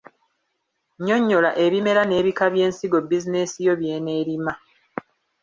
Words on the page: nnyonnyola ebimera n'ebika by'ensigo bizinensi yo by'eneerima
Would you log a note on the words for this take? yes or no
no